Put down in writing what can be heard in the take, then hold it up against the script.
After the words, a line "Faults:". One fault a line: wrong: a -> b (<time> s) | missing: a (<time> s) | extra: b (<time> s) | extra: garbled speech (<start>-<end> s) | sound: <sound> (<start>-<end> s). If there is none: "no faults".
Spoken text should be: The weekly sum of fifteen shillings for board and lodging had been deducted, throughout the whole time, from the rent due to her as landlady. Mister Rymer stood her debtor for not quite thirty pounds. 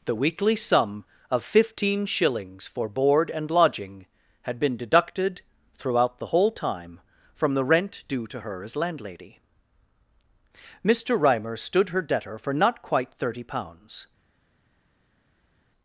The weekly sum of fifteen shillings for board and lodging had been deducted, throughout the whole time, from the rent due to her as landlady. Mister Rymer stood her debtor for not quite thirty pounds.
Faults:
no faults